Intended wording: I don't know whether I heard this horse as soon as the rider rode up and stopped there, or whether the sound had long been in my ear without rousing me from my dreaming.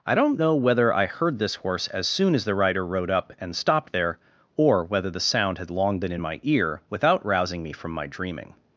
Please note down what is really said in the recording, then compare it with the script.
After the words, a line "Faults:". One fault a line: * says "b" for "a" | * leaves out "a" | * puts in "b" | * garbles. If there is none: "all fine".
I don't know whether I heard this horse as soon as the rider rode up and stopped there, or whether the sound had long been in my ear without rousing me from my dreaming.
Faults:
all fine